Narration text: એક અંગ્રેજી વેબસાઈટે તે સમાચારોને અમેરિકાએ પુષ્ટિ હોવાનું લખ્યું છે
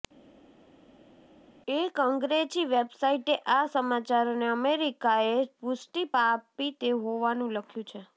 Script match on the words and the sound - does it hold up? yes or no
no